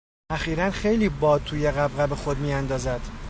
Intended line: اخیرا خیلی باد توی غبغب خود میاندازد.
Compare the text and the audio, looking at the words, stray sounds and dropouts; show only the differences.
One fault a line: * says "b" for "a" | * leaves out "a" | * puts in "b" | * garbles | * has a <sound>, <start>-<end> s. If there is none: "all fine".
all fine